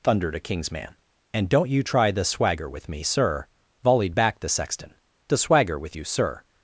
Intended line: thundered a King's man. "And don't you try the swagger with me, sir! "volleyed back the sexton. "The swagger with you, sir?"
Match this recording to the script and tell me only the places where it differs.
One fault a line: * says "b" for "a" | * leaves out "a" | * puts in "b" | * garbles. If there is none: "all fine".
all fine